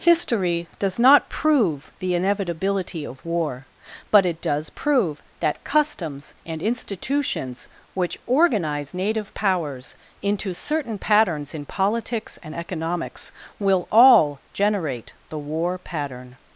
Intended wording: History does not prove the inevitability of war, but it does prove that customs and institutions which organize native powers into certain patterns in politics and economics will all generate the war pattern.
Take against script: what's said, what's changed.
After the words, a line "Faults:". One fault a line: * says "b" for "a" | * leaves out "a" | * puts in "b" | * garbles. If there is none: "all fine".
History does not prove the inevitability of war, but it does prove that customs and institutions which organize native powers into certain patterns in politics and economics will all generate the war pattern.
Faults:
all fine